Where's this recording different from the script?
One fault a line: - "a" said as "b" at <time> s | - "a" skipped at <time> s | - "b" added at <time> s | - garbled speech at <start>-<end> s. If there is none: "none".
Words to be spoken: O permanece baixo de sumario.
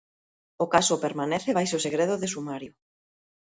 - "caso" added at 0.7 s
- "segredo" added at 1.8 s